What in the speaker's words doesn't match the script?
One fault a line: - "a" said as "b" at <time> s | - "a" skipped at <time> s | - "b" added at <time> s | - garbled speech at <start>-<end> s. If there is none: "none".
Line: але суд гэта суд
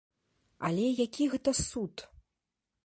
- "суд" said as "які" at 1.0 s